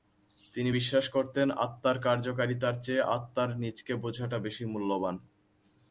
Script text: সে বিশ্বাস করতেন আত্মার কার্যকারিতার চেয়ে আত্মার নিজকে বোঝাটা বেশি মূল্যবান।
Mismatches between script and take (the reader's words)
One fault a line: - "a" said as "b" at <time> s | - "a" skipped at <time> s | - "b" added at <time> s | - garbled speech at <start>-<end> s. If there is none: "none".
- "সে" said as "তিনি" at 0.5 s